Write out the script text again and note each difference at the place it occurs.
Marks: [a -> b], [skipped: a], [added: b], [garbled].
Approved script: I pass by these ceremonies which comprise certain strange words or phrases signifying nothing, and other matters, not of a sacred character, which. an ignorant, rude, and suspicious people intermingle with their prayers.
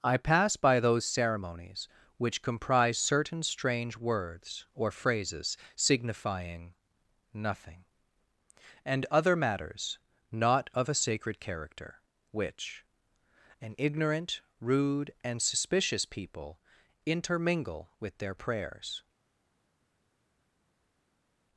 I pass by [these -> those] ceremonies which comprise certain strange words or phrases signifying nothing, and other matters, not of a sacred character, which. an ignorant, rude, and suspicious people intermingle with their prayers.